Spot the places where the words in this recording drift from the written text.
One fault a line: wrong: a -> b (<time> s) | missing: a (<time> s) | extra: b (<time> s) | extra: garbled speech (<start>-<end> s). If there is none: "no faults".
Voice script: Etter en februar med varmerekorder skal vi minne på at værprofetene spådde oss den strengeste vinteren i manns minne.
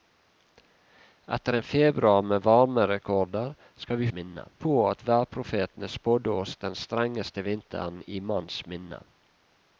no faults